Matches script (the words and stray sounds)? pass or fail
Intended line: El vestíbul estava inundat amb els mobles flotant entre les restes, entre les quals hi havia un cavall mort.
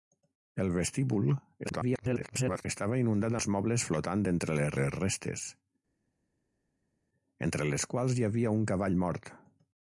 fail